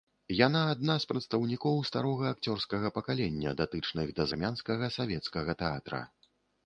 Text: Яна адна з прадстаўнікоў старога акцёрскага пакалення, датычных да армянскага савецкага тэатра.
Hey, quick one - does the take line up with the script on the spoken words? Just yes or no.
yes